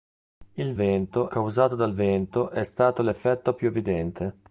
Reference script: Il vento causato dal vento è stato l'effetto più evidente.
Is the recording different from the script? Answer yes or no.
no